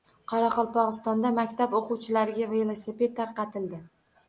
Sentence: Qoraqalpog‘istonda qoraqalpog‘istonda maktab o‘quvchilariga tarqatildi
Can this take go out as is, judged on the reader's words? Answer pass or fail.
fail